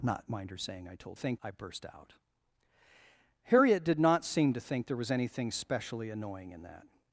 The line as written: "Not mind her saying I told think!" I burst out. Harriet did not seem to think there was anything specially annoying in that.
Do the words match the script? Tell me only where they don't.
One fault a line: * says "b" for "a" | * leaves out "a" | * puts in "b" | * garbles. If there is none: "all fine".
all fine